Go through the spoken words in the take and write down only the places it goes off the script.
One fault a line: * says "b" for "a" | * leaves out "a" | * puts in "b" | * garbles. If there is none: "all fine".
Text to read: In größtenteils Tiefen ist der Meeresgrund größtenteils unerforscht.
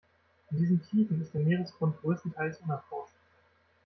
* says "diesen" for "größtenteils"